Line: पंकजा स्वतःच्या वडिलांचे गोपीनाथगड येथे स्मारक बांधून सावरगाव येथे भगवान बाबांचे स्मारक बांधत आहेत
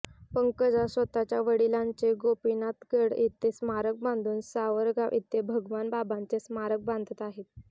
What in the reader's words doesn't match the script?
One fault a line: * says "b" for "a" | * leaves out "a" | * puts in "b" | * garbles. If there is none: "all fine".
all fine